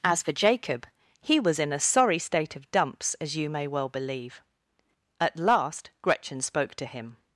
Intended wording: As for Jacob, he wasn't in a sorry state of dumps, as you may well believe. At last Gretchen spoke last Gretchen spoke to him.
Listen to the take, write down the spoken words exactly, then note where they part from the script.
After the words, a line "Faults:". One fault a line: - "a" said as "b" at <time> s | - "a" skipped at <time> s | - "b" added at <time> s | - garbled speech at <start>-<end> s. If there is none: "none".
As for Jacob, he was in a sorry state of dumps, as you may well believe. At last Gretchen spoke to him.
Faults:
- "wasn't" said as "was" at 1.4 s
- "last Gretchen spoke" skipped at 6.7 s